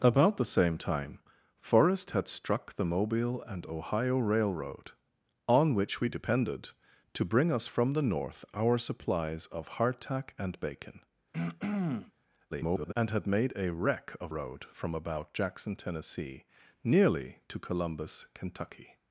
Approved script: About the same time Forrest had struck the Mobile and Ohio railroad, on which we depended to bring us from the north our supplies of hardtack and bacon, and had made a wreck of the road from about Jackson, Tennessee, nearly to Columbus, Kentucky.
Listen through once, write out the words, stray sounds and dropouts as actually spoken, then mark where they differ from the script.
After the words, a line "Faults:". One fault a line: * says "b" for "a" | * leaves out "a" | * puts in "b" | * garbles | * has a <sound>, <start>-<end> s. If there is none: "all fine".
About the same time Forrest had struck the Mobile and Ohio railroad, on which we depended to bring us from the north our supplies of hardtack and bacon, [garbled] and had made a wreck of road from about Jackson, Tennessee, nearly to Columbus, Kentucky.
Faults:
* has a throat clearing, 11.3-12.1 s
* garbles
* leaves out "the"